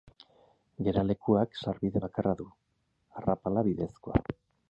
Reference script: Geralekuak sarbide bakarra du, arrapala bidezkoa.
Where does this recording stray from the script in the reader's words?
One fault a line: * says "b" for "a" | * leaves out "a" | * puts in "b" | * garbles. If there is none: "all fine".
all fine